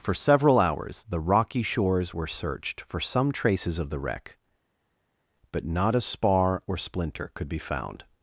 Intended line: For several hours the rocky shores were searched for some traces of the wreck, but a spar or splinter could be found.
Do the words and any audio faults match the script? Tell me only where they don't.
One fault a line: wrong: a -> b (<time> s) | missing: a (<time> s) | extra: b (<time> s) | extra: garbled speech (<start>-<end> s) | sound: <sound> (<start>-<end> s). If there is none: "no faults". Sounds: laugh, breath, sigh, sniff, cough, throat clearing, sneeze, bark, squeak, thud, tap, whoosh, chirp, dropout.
extra: not (5.6 s)